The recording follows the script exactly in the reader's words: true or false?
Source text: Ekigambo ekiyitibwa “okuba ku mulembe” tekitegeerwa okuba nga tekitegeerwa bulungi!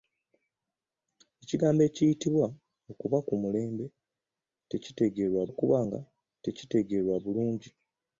true